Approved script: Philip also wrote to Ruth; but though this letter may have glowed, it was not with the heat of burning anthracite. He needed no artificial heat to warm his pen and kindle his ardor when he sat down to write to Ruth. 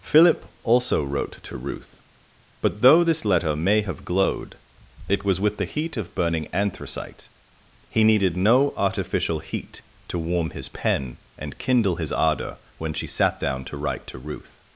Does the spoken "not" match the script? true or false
false